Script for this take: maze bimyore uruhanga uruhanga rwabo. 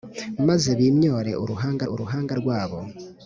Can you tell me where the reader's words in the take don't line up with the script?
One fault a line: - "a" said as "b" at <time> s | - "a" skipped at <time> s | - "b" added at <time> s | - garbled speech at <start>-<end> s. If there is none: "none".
none